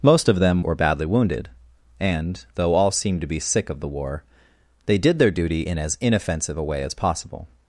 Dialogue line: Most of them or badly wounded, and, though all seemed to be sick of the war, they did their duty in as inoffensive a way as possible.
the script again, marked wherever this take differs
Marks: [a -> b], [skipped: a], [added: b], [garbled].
Most of them or badly wounded, and, though all seemed to be sick of the war, they did their duty in as inoffensive a way as possible.